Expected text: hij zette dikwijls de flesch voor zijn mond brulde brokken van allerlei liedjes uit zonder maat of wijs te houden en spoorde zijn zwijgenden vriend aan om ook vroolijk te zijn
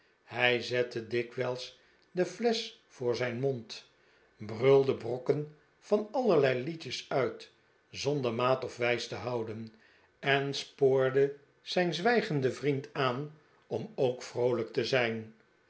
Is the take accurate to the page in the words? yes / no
yes